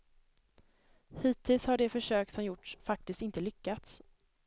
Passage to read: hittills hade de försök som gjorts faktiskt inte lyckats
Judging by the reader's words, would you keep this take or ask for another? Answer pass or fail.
fail